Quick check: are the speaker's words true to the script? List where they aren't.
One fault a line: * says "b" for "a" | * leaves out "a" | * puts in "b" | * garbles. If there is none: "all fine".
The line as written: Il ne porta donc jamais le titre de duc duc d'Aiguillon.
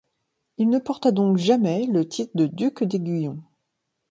* leaves out "duc"